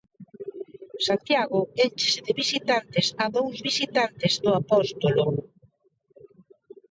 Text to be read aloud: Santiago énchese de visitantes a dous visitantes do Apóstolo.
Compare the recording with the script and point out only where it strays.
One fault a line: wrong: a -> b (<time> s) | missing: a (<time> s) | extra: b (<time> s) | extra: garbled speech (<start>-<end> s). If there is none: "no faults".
no faults